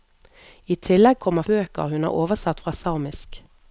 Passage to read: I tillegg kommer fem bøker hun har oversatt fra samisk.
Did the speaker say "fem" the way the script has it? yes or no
no